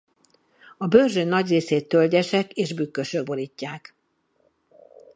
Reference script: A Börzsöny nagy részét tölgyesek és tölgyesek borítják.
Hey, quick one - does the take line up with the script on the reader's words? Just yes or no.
no